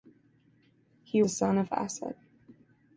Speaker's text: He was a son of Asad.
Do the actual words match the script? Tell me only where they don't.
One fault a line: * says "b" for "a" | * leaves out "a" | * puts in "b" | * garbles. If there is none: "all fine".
* leaves out "was"